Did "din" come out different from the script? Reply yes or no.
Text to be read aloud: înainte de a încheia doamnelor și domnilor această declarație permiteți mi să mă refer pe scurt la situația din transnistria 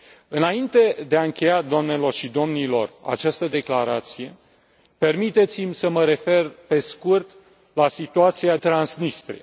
yes